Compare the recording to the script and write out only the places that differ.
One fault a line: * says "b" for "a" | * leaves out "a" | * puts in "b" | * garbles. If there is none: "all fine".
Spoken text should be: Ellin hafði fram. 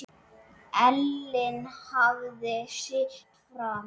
* puts in "sitt"